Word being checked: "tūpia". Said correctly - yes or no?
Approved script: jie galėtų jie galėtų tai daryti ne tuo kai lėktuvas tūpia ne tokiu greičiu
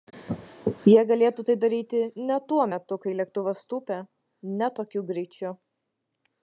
yes